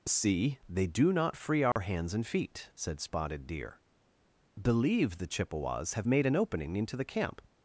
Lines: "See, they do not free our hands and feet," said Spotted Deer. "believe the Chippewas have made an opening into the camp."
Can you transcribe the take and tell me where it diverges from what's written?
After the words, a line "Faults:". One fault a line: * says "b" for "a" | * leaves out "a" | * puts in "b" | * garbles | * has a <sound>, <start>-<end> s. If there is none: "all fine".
"See, they do not free our hands and feet," said Spotted Deer. "believe the Chippewas have made an opening into the camp."
Faults:
* has a dropout, 1.7-1.8 s